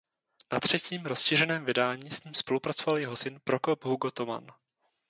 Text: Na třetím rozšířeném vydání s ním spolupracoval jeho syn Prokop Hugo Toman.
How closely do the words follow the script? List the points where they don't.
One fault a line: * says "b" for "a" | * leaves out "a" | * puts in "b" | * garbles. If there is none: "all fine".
all fine